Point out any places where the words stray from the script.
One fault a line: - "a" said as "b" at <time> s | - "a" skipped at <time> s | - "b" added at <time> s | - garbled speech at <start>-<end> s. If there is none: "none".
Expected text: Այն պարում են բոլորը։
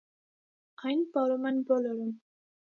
none